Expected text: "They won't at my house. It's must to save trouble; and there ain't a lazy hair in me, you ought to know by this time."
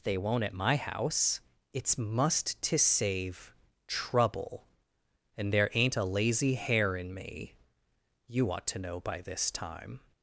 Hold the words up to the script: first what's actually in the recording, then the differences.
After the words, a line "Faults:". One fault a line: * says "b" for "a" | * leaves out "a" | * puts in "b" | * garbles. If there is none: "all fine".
"They won't at my house. It's must to save trouble; and there ain't a lazy hair in me, you ought to know by this time."
Faults:
all fine